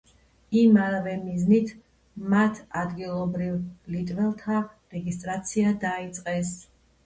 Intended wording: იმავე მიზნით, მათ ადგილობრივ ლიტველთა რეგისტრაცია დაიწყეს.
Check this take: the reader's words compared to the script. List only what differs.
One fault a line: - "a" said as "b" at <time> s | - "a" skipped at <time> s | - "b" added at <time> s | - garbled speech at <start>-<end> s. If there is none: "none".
none